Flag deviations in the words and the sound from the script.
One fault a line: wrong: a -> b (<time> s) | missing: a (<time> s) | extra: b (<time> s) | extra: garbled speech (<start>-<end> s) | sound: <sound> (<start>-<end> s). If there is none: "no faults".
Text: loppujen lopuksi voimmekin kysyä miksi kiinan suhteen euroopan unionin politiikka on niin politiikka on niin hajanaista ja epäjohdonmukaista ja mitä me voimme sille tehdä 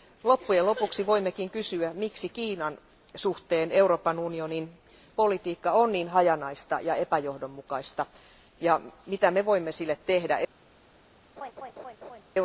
missing: politiikka on niin (6.1 s)
sound: laugh (11.4-12.2 s)